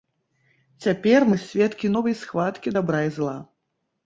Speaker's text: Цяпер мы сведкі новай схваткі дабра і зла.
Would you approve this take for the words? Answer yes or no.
yes